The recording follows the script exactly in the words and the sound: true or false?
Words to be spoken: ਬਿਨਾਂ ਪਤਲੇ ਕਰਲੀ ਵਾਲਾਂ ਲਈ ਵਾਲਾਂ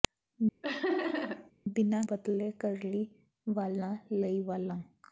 false